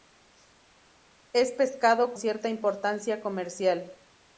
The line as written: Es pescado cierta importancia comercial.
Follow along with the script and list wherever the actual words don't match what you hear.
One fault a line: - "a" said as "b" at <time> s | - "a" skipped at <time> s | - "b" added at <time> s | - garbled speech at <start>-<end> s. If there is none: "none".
none